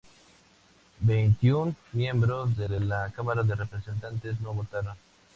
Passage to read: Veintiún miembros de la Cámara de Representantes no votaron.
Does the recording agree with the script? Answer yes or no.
no